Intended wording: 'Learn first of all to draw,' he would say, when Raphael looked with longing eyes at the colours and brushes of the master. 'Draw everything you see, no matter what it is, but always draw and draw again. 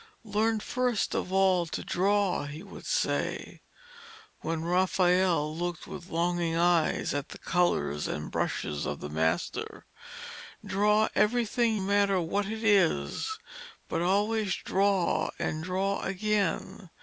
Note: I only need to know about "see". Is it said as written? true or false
false